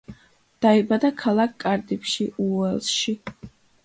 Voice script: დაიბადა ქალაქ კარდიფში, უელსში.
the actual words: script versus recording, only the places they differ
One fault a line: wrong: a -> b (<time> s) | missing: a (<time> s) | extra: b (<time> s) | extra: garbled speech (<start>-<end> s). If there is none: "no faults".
no faults